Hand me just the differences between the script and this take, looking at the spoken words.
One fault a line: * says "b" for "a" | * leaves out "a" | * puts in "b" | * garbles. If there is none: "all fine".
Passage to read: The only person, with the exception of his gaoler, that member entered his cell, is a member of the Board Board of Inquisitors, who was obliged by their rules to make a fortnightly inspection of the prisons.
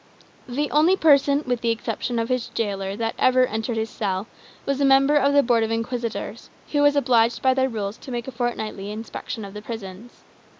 * says "ever" for "member"
* says "was" for "is"
* leaves out "Board"